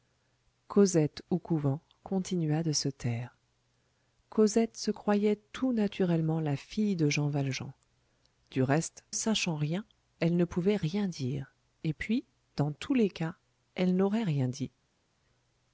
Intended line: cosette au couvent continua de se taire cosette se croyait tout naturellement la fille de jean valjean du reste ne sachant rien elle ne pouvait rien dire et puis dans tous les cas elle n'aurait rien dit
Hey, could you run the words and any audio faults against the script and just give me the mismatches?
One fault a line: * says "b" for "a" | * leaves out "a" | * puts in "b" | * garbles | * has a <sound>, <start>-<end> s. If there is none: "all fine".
* leaves out "ne"